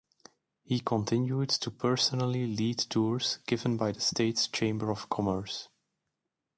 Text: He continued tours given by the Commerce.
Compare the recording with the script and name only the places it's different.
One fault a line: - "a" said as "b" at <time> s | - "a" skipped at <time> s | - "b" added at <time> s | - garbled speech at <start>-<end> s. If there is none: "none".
- "to personally lead" added at 1.5 s
- "state's Chamber of" added at 4.0 s